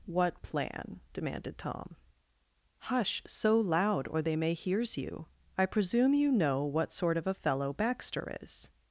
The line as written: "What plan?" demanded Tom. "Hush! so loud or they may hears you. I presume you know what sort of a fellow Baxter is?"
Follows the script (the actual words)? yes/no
yes